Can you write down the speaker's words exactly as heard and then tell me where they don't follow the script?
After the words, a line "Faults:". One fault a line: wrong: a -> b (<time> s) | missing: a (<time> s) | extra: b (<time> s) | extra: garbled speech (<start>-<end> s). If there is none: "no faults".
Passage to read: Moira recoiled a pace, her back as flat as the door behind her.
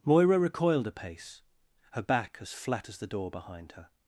Moira recoiled a pace, her back as flat as the door behind her.
Faults:
no faults